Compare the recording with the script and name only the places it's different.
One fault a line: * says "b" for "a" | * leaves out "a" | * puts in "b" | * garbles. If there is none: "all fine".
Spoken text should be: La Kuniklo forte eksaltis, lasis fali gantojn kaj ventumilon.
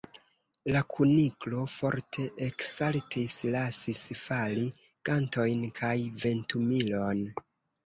all fine